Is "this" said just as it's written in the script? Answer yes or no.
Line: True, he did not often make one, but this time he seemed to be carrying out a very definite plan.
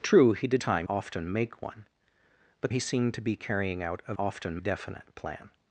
no